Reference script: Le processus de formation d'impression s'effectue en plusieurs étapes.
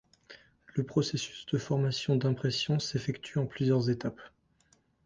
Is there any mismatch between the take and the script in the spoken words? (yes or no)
no